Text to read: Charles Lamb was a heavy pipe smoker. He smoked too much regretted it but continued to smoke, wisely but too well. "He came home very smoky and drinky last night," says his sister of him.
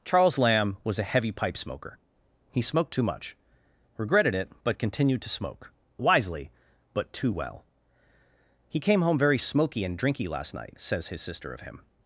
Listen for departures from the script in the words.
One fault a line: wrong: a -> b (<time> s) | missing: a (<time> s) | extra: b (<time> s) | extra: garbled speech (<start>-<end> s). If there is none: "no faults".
no faults